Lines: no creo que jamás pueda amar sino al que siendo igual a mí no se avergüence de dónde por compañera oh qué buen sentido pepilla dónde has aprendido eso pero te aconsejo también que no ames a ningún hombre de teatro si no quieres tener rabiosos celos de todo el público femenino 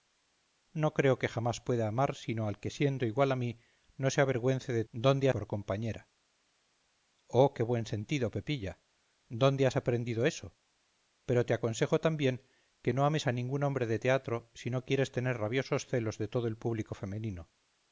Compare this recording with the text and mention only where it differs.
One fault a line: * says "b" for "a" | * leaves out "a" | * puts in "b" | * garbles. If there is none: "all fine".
all fine